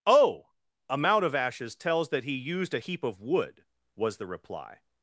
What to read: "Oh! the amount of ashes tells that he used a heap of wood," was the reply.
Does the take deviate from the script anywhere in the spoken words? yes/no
yes